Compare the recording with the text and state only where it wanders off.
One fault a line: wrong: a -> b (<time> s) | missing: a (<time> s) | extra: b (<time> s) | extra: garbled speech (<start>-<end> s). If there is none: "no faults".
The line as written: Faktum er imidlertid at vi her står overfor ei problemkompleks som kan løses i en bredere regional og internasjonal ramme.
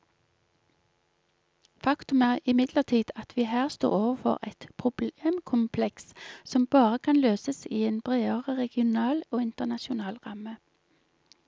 wrong: ei -> et (4.5 s)
extra: bare (6.7 s)